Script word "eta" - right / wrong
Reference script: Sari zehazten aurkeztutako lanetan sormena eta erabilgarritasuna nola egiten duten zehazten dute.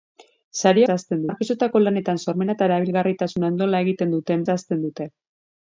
right